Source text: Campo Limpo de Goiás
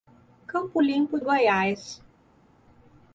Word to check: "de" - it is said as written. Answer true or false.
false